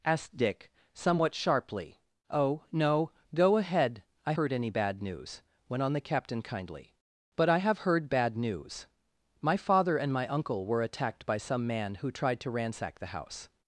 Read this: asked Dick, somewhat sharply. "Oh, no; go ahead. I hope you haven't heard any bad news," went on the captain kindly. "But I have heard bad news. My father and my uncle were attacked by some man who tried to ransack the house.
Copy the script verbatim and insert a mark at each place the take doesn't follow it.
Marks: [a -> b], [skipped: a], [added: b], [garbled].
asked Dick, somewhat sharply. "Oh, no; go ahead. I [skipped: hope you haven't] heard any bad news," went on the captain kindly. "But I have heard bad news. My father and my uncle were attacked by some man who tried to ransack the house.